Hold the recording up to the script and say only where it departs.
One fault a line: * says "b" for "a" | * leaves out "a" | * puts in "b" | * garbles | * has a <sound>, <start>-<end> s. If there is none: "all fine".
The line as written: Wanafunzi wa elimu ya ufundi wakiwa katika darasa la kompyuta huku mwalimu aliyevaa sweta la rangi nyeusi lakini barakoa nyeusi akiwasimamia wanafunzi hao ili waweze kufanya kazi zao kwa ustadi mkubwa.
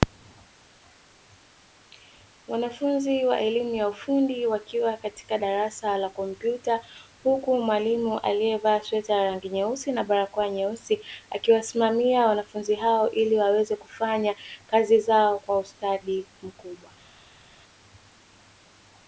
* says "na" for "lakini"